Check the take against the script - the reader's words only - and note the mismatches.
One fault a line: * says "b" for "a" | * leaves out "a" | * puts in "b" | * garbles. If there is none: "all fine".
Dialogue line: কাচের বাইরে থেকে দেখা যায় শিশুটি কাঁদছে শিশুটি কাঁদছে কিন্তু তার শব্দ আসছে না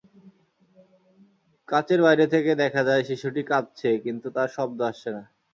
* leaves out "শিশুটি কাঁদছে"